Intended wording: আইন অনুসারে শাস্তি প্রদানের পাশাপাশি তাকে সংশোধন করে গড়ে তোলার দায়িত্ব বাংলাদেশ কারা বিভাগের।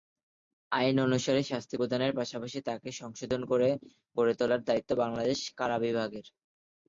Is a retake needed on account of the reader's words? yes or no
no